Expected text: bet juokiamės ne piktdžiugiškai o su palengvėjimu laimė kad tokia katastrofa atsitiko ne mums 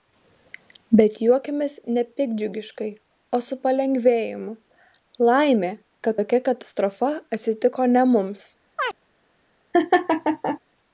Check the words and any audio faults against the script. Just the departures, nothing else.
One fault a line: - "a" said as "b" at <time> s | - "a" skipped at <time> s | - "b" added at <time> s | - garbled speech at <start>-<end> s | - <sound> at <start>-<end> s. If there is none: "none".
- chirp at 8.8-8.9 s
- laugh at 9.7-10.6 s